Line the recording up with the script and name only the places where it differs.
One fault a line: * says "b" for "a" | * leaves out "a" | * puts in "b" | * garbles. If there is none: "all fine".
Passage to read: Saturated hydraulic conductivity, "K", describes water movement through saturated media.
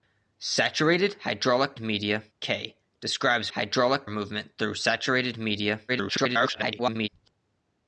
* says "media" for "conductivity"
* says "hydraulic" for "water"
* garbles